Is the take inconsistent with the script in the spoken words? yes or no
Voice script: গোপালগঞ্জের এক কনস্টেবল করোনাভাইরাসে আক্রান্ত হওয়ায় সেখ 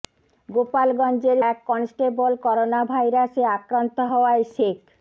no